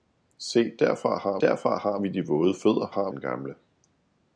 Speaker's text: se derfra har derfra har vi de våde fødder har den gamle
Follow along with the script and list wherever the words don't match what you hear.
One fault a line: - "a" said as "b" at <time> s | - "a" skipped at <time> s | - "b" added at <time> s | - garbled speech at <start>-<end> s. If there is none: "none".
none